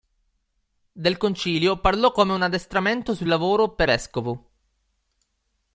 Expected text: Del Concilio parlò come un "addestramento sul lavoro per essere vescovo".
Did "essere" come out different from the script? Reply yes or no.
yes